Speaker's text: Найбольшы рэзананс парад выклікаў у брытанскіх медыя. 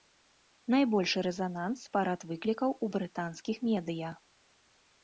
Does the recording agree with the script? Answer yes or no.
yes